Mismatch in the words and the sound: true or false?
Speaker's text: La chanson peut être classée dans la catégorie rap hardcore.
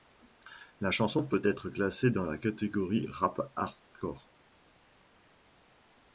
false